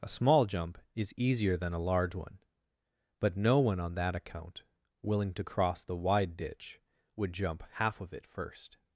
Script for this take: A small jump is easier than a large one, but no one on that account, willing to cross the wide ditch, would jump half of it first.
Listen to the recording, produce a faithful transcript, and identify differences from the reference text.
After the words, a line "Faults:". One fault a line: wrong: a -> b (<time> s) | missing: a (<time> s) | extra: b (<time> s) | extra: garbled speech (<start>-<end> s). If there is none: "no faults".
A small jump is easier than a large one, but no one on that account, willing to cross the wide ditch, would jump half of it first.
Faults:
no faults